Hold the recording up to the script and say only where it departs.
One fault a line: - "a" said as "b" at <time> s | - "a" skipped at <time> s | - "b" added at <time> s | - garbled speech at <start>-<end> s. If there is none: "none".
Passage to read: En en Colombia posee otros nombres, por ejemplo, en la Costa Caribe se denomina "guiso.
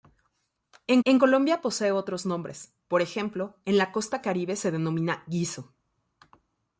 none